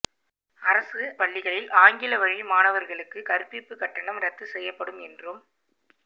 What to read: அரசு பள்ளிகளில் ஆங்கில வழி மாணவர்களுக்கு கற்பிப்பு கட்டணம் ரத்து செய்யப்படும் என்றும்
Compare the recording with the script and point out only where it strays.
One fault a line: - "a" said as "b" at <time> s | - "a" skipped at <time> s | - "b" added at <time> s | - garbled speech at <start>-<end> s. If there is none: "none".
none